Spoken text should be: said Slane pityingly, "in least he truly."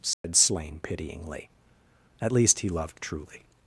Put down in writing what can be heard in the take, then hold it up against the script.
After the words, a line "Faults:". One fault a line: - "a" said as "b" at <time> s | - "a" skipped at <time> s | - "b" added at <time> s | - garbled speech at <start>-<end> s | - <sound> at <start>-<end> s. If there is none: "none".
said Slane pityingly, "at least he loved truly."
Faults:
- dropout at 0.1-0.2 s
- "in" said as "at" at 2.2 s
- "loved" added at 2.7 s